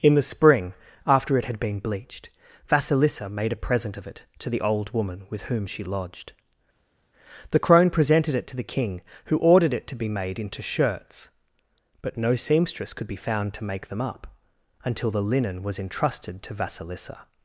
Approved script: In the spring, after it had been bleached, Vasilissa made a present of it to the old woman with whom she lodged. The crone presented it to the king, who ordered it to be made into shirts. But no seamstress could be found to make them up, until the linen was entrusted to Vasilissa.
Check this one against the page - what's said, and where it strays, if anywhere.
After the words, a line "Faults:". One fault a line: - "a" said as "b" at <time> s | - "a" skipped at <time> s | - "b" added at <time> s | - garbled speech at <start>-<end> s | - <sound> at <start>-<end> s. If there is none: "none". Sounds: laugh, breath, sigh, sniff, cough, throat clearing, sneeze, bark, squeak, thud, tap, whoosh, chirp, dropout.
In the spring, after it had been bleached, Vasilissa made a present of it to the old woman with whom she lodged. The crone presented it to the king, who ordered it to be made into shirts. But no seamstress could be found to make them up, until the linen was entrusted to Vasilissa.
Faults:
none